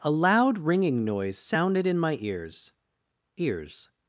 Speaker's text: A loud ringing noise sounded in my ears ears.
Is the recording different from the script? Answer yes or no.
no